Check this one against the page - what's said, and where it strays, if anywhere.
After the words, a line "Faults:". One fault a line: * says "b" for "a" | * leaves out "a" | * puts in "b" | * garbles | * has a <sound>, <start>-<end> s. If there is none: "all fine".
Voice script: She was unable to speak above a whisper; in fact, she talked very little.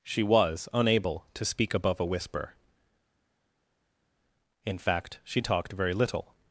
She was unable to speak above a whisper; in fact, she talked very little.
Faults:
all fine